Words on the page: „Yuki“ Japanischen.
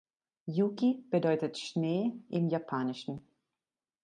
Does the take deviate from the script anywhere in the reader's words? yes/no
yes